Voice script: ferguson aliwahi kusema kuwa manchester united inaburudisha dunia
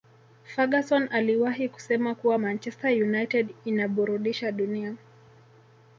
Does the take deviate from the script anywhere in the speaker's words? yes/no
no